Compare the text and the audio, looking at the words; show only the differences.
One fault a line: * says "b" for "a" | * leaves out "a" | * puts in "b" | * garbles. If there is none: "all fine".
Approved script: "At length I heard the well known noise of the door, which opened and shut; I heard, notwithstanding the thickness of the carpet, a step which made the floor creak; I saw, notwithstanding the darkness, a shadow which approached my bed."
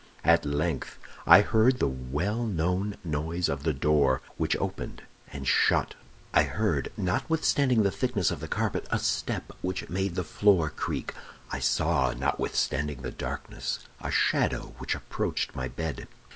all fine